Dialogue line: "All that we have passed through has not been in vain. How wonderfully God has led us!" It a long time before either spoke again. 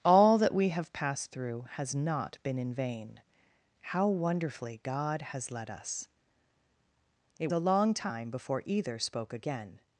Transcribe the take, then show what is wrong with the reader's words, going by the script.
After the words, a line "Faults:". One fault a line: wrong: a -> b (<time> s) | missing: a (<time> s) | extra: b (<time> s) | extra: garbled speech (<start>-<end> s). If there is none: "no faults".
"All that we have passed through has not been in vain. How wonderfully God has led us!" It a long time before either spoke again.
Faults:
no faults